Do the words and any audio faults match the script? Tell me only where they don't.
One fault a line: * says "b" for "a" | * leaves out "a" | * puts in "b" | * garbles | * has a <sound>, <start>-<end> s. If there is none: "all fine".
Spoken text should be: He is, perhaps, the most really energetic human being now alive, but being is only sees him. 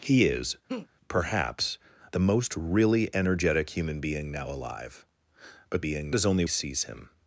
* has a laugh, 0.7-0.9 s